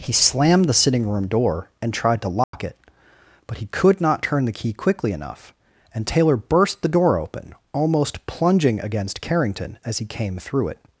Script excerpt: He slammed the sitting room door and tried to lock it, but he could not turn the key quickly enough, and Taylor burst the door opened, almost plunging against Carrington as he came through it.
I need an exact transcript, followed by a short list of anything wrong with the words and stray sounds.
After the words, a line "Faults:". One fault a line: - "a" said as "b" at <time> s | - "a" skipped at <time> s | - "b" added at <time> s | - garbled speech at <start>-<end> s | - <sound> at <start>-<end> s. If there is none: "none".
He slammed the sitting room door and tried to lock it, but he could not turn the key quickly enough, and Taylor burst the door open, almost plunging against Carrington as he came through it.
Faults:
- dropout at 2.4-2.5 s
- "opened" said as "open" at 7.2 s